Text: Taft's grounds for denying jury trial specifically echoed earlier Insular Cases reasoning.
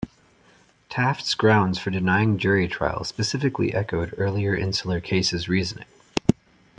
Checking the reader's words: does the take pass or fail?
pass